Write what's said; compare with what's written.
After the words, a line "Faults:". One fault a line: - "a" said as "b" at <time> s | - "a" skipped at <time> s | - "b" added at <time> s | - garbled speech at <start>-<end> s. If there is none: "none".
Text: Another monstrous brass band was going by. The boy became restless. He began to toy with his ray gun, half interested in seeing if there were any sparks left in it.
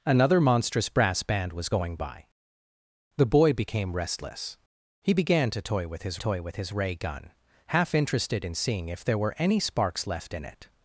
Another monstrous brass band was going by. The boy became restless. He began to toy with his toy with his ray gun, half interested in seeing if there were any sparks left in it.
Faults:
- "toy with his" added at 6.2 s